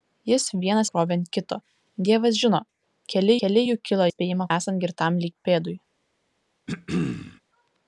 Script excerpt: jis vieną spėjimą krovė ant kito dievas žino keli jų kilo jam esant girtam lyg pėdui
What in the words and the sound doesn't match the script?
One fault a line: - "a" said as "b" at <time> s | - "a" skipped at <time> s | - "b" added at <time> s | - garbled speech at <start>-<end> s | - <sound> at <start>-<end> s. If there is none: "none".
- "spėjimą" skipped at 0.8 s
- "keli" added at 3.4 s
- "jam" said as "spėjimą" at 4.1 s
- throat clearing at 6.7-7.4 s